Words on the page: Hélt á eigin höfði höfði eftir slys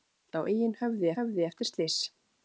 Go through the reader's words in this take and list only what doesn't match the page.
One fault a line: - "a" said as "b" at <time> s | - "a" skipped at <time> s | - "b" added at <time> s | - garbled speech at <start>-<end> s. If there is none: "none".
none